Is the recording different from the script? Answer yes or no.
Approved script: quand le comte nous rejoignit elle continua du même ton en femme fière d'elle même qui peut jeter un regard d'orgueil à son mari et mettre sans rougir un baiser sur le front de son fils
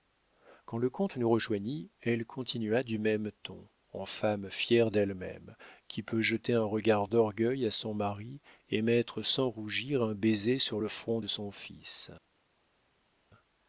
no